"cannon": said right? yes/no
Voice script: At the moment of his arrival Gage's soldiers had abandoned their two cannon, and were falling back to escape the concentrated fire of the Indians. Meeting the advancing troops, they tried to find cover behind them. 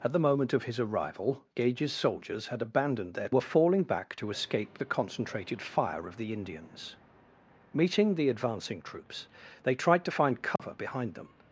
no